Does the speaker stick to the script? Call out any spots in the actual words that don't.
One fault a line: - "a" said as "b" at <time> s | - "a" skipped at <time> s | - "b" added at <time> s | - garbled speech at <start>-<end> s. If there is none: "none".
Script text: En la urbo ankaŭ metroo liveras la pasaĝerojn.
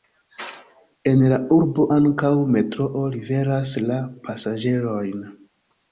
none